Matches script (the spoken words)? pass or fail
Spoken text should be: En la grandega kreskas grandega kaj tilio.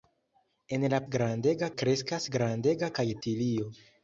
pass